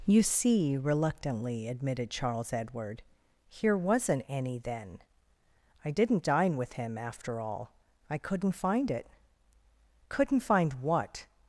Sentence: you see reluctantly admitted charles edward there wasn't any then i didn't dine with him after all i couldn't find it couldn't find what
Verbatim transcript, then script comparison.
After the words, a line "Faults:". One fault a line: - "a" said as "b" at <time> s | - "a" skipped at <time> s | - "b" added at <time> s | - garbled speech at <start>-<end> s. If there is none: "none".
you see reluctantly admitted charles edward here wasn't any then i didn't dine with him after all i couldn't find it couldn't find what
Faults:
- "there" said as "here" at 3.5 s